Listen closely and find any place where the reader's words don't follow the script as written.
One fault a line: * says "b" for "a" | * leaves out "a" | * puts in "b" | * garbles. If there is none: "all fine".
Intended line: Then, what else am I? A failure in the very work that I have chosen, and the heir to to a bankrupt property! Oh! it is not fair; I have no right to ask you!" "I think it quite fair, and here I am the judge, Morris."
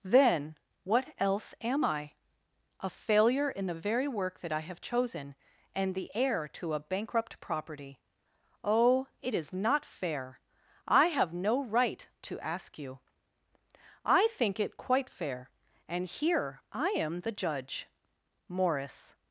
* leaves out "to"